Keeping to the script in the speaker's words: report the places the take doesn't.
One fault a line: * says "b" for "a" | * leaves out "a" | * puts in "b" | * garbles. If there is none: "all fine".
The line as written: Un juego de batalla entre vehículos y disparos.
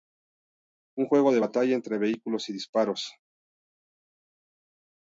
all fine